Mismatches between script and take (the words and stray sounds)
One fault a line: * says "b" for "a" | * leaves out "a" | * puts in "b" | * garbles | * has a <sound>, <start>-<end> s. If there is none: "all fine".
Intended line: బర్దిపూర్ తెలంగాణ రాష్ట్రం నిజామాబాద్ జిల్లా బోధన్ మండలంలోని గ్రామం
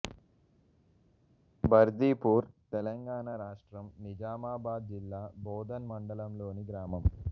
all fine